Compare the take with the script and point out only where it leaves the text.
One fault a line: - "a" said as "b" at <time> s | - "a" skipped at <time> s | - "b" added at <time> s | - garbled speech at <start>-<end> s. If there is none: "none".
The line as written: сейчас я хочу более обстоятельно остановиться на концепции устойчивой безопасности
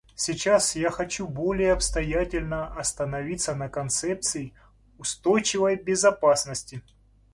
none